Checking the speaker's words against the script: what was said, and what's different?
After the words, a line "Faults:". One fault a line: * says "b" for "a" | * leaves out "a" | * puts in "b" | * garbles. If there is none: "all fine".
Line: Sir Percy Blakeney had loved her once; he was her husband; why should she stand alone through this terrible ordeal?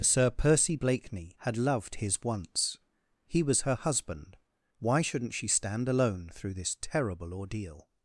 Sir Percy Blakeney had loved his once; he was her husband; why shouldn't she stand alone through this terrible ordeal?
Faults:
* says "his" for "her"
* says "shouldn't" for "should"